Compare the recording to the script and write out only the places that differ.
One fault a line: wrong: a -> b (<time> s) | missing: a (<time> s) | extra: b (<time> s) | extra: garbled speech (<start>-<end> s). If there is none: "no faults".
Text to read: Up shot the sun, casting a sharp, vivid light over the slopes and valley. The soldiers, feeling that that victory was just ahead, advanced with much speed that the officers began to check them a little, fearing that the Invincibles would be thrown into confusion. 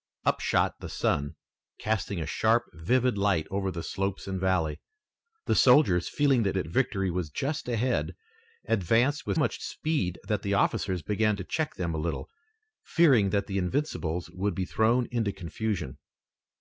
no faults